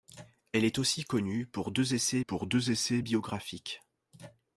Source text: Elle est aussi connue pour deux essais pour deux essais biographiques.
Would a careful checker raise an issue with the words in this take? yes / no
no